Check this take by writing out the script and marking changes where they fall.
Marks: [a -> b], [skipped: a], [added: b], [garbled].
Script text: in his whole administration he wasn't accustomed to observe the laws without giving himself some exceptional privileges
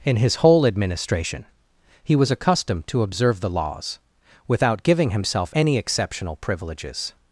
in his whole administration he [wasn't -> was] accustomed to observe the laws without giving himself [some -> any] exceptional privileges